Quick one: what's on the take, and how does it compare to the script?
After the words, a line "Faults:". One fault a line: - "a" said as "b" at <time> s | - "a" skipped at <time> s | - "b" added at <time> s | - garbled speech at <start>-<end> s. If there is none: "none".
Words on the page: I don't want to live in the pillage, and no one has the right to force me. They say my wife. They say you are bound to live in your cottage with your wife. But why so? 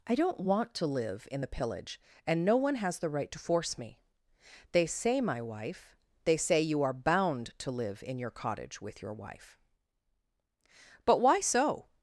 I don't want to live in the pillage, and no one has the right to force me. They say my wife. They say you are bound to live in your cottage with your wife. But why so?
Faults:
none